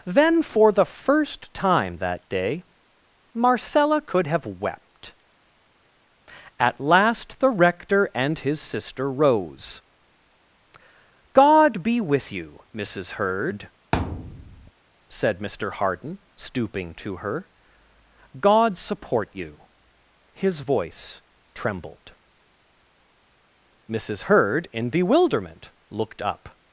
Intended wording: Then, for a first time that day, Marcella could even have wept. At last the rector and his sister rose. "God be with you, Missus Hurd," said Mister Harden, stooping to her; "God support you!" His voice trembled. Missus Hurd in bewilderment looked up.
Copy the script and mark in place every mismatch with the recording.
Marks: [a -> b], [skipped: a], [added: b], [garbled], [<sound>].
Then, for [a -> the] first time that day, Marcella could [skipped: even] have wept. At last the rector and his sister rose. "God be with you, Missus Hurd," [thud] said Mister Harden, stooping to her; "God support you!" His voice trembled. Missus Hurd in bewilderment looked up.